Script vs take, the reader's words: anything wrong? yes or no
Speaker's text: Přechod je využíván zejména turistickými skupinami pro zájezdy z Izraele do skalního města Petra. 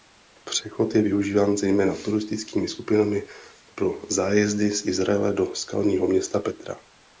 no